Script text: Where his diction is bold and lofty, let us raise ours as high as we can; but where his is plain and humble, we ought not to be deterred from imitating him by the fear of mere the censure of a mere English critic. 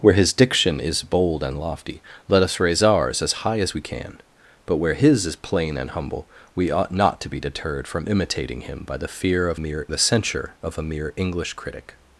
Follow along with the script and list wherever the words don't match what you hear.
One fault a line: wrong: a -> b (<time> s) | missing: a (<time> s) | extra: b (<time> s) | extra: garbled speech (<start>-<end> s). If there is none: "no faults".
no faults